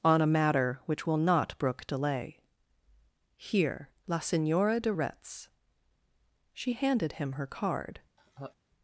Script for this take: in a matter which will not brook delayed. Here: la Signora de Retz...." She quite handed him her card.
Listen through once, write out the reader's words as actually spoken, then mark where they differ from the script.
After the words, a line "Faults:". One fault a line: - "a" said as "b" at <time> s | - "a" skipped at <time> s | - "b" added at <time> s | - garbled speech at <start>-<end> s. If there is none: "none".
on a matter which will not brook delay. Here: la Signora de Retz...." She handed him her card.
Faults:
- "in" said as "on" at 0.0 s
- "delayed" said as "delay" at 1.9 s
- "quite" skipped at 6.7 s